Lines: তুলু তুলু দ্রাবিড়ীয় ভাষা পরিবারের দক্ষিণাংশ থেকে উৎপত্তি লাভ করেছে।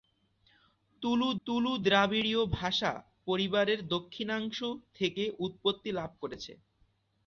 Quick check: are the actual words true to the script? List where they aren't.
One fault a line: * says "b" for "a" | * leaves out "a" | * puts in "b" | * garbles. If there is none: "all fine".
all fine